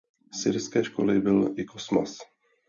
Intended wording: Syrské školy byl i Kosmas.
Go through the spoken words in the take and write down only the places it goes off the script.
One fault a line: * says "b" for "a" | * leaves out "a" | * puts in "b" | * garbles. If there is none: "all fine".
all fine